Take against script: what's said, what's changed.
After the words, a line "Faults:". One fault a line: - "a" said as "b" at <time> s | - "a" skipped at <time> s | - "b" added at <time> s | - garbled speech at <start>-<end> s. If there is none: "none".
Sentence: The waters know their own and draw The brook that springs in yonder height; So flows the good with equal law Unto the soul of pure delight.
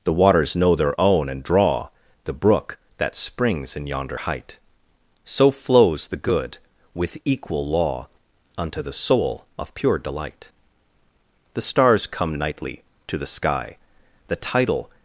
The waters know their own and draw The brook that springs in yonder height; So flows the good with equal law Unto the soul of pure delight. The stars come nightly to the sky; The tidal
Faults:
- "The stars come nightly to the sky The tidal" added at 11.5 s